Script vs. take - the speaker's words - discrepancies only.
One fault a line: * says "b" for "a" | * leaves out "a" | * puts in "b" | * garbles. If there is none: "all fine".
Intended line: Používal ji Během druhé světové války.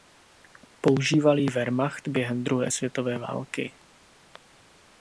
* puts in "Wehrmacht"